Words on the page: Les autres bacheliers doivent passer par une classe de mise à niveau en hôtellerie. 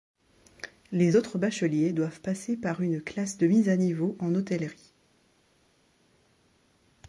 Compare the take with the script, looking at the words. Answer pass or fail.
pass